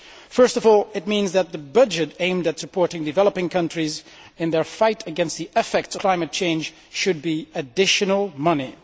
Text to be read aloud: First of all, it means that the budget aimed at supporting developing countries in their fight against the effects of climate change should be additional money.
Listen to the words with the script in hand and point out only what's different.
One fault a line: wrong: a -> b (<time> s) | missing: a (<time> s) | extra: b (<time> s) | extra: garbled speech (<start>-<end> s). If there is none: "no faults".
missing: of (6.0 s)